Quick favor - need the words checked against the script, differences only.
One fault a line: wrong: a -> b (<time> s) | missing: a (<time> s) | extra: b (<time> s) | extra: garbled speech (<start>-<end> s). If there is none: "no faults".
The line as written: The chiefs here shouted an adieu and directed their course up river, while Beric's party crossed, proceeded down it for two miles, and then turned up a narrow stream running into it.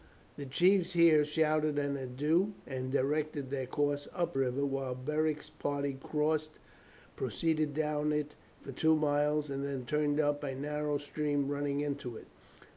no faults